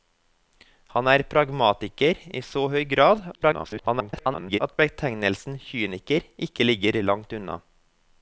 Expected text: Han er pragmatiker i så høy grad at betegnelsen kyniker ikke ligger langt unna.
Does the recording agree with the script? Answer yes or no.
no